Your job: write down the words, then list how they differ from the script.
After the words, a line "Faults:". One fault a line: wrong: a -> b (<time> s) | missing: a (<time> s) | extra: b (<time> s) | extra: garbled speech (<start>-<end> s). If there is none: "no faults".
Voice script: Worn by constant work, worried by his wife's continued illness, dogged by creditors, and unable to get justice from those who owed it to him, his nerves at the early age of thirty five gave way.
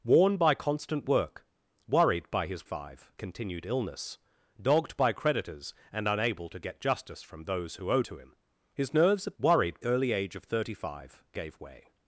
Worn by constant work, worried by his five continued illness, dogged by creditors, and unable to get justice from those who owed to him, his nerves at worried early age of thirty five gave way.
Faults:
wrong: wife's -> five (2.6 s)
missing: it (8.1 s)
wrong: the -> worried (9.4 s)